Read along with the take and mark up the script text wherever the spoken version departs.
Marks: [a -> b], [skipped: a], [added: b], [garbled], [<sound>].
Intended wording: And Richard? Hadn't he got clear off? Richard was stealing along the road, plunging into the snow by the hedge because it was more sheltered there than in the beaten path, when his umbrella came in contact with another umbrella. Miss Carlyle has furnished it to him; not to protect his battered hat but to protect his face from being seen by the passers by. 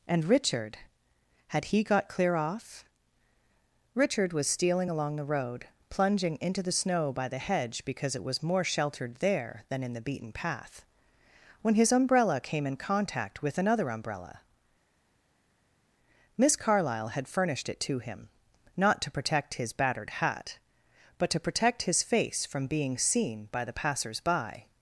And Richard? [Hadn't -> Had] he got clear off? Richard was stealing along the road, plunging into the snow by the hedge because it was more sheltered there than in the beaten path, when his umbrella came in contact with another umbrella. Miss Carlyle [has -> had] furnished it to him; not to protect his battered hat but to protect his face from being seen by the passers by.